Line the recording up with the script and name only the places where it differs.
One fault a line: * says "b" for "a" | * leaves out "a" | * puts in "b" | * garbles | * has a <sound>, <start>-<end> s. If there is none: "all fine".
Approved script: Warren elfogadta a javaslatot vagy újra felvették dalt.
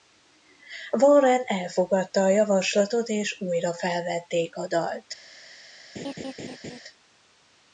* says "és" for "vagy"
* puts in "a"
* has a laugh, 6.0-6.8 s